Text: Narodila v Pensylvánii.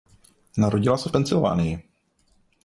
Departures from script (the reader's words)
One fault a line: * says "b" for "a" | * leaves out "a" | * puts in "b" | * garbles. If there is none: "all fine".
* puts in "se"